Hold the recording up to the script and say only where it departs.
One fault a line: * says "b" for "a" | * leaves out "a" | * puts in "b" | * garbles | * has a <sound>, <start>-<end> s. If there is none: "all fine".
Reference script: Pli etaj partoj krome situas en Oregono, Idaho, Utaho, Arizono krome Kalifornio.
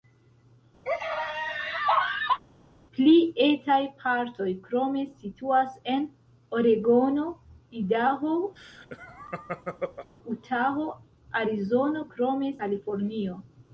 * has a laugh, 0.9-2.4 s
* has a laugh, 8.6-10.1 s